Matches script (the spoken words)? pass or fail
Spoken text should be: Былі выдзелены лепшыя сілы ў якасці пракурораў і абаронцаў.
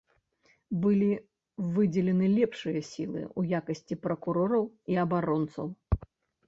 pass